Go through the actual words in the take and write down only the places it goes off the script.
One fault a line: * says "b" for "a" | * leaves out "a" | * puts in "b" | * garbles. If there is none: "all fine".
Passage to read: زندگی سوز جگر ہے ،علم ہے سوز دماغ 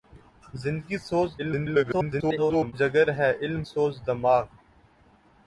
* garbles
* leaves out "ہے"